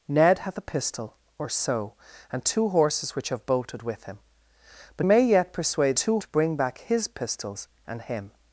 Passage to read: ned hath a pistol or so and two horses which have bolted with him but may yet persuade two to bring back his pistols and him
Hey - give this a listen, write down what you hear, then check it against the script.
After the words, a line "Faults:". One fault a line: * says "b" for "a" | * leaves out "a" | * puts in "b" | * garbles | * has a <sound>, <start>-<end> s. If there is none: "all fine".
ned hath a pistol or so and two horses which have bolted with him but may yet persuade two to bring back his pistols and him
Faults:
all fine